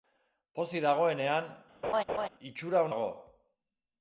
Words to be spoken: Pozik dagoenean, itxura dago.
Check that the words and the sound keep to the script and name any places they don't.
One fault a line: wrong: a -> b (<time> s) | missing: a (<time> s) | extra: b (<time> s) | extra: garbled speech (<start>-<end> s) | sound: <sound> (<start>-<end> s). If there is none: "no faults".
sound: laugh (1.8-2.3 s)